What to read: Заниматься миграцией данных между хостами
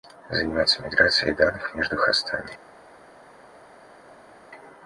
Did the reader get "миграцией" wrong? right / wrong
right